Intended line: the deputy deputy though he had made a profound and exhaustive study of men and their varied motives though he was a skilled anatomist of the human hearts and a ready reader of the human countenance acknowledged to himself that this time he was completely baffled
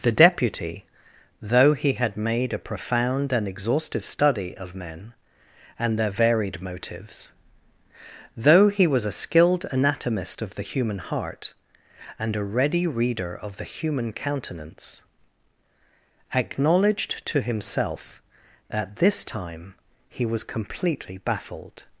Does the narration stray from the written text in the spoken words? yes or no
yes